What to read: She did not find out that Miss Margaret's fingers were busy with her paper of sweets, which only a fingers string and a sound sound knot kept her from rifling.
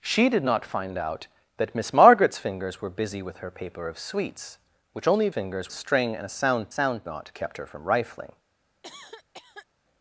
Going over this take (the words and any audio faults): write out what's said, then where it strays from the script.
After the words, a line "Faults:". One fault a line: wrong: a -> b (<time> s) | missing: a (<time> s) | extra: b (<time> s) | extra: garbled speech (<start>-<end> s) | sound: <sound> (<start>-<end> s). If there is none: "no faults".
She did not find out that Miss Margaret's fingers were busy with her paper of sweets, which only a fingers string and a sound sound knot kept her from rifling.
Faults:
sound: cough (8.8-9.7 s)